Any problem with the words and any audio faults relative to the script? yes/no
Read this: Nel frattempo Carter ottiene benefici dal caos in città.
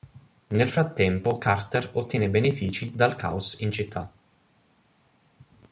no